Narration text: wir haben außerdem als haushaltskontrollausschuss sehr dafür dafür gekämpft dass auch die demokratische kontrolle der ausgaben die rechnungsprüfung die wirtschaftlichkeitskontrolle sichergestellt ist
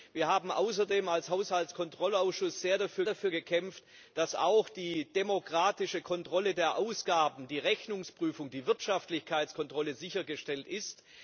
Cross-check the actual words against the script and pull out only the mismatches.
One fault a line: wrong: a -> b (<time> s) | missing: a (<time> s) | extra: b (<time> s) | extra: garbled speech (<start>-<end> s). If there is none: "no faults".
no faults